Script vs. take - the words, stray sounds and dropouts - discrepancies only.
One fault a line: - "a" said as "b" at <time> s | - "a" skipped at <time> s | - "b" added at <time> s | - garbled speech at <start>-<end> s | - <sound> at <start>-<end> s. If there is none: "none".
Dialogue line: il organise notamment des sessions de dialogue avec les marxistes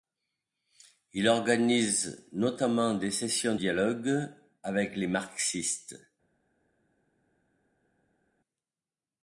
- "de" skipped at 3.5 s